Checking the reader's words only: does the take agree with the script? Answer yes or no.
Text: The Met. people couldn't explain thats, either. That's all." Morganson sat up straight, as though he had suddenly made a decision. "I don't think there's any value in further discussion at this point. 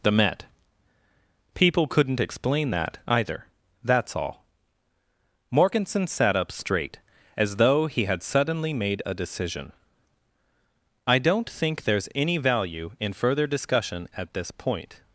no